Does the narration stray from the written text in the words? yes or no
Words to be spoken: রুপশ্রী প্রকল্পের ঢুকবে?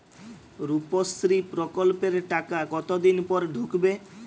yes